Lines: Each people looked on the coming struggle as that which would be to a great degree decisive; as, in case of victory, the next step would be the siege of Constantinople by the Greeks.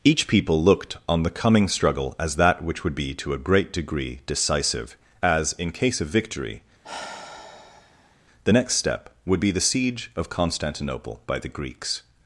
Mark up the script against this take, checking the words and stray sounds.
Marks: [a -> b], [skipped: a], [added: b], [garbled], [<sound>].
Each people looked on the coming struggle as that which would be to a great degree decisive; as, in case of victory, [sigh] the next step would be the siege of Constantinople by the Greeks.